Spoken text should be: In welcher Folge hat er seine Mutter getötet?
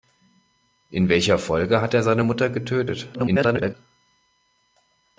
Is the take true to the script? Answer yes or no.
no